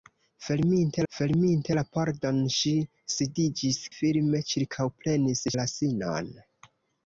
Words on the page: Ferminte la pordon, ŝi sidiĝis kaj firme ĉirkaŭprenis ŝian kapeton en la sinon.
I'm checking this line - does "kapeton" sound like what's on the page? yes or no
no